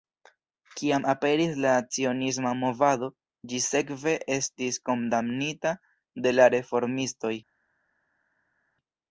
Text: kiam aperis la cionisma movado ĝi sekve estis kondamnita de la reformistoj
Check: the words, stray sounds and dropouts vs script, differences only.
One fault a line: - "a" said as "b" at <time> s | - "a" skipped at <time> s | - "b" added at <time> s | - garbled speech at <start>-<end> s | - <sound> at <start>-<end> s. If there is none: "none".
none